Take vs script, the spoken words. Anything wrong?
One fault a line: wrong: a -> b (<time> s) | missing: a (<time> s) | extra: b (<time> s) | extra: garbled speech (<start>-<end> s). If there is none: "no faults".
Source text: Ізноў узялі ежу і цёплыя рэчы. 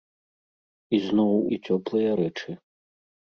missing: узялі ежу (1.3 s)